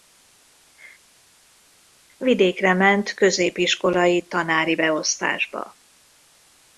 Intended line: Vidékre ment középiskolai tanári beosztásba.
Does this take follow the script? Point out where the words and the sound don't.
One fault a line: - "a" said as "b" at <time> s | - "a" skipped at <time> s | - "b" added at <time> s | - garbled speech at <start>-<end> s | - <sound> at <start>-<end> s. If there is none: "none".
none